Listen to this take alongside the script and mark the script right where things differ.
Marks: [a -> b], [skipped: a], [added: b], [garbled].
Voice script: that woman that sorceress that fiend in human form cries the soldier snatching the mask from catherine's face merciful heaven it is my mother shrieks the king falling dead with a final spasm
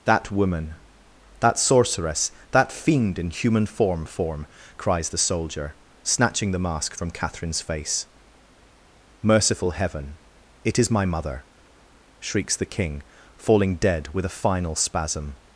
that woman that sorceress that fiend in human form [added: form] cries the soldier snatching the mask from catherine's face merciful heaven it is my mother shrieks the king falling dead with a final spasm